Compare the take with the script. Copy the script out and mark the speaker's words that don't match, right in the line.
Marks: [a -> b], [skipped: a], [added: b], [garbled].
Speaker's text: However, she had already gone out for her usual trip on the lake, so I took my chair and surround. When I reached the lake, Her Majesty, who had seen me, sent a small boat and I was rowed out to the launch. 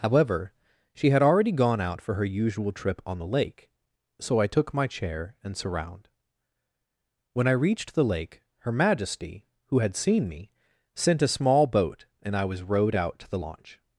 However, she had already gone out for her usual trip on the lake, so I took my chair and surround. When I reached the lake, Her Majesty, who had seen me, sent a small boat and I was rowed out to the launch.